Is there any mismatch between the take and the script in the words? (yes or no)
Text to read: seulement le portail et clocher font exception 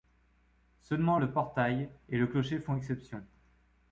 yes